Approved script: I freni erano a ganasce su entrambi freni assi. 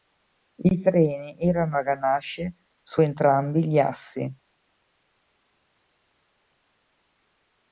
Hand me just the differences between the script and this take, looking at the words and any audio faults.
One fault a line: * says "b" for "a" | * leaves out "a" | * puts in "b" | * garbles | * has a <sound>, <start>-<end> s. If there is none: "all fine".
* says "gli" for "freni"